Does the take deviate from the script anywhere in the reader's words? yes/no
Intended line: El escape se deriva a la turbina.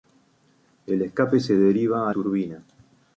yes